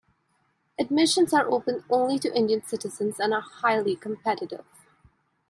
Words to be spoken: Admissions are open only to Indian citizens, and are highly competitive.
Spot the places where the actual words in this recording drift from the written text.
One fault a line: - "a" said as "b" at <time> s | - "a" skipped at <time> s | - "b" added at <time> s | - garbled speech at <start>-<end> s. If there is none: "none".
none